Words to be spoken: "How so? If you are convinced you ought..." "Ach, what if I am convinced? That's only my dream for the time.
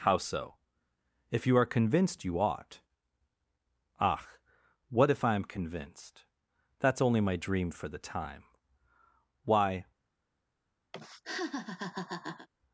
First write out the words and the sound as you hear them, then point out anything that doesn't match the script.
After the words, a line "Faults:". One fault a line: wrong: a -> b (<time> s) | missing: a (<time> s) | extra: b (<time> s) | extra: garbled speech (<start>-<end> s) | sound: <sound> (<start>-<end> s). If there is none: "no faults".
"How so? If you are convinced you ought..." "Ach, what if I am convinced? That's only my dream for the time. Why
Faults:
extra: Why (9.4 s)
sound: laugh (10.9-12.5 s)